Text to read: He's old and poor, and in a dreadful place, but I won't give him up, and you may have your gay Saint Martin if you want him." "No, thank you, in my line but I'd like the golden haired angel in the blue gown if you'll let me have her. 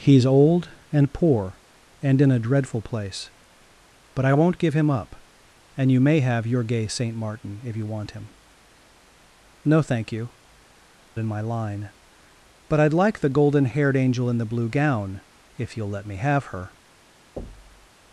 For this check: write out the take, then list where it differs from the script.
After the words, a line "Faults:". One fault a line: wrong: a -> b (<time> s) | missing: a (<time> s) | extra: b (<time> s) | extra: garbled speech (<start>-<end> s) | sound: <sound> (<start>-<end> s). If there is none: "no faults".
He's old and poor, and in a dreadful place, but I won't give him up, and you may have your gay Saint Martin if you want him." "No, thank you, in my line but I'd like the golden haired angel in the blue gown if you'll let me have her.
Faults:
sound: thud (17.4-17.9 s)